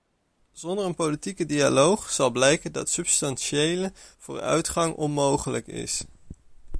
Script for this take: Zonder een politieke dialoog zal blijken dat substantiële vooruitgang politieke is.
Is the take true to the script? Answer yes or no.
no